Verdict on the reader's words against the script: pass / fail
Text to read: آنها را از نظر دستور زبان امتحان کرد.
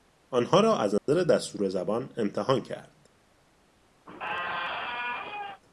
pass